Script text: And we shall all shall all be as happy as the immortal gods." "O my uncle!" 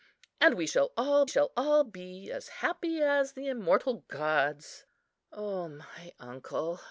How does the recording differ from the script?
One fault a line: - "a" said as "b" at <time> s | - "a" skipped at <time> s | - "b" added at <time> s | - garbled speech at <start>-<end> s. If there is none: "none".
none